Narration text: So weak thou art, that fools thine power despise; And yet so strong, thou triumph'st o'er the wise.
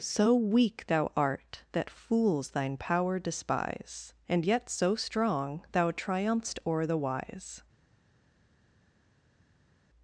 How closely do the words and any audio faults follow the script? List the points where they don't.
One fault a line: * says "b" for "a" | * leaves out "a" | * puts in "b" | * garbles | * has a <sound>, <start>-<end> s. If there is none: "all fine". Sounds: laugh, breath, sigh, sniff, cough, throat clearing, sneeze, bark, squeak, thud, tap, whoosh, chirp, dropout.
all fine